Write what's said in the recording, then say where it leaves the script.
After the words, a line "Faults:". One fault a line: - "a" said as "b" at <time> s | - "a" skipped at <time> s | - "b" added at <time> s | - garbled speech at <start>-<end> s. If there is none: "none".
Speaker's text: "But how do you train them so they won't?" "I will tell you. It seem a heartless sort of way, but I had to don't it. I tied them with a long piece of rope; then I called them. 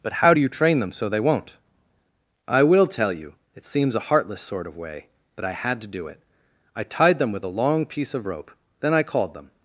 "But how do you train them so they won't?" "I will tell you. It seems a heartless sort of way, but I had to do it. I tied them with a long piece of rope; then I called them.
Faults:
- "seem" said as "seems" at 3.6 s
- "don't" said as "do" at 5.9 s